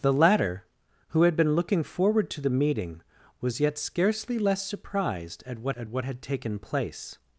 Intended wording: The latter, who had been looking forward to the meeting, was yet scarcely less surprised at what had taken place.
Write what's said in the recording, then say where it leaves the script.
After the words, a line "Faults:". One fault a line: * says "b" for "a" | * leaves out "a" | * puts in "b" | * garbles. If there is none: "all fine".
The latter, who had been looking forward to the meeting, was yet scarcely less surprised at what at what had taken place.
Faults:
* puts in "at what"